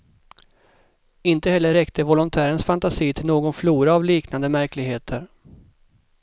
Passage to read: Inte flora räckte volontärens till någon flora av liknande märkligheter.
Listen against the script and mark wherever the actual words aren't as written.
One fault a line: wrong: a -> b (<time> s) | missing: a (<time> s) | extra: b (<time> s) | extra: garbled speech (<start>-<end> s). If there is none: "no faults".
wrong: flora -> heller (1.5 s)
extra: fantasi (2.6 s)